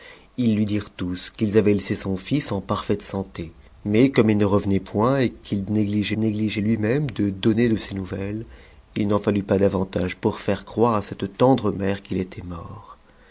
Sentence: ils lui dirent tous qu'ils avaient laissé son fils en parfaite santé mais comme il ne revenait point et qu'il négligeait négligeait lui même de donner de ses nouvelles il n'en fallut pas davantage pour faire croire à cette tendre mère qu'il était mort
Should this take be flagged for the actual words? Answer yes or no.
no